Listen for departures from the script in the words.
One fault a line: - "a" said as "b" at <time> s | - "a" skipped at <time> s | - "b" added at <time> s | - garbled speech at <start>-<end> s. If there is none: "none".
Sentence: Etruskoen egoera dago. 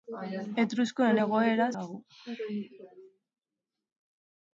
none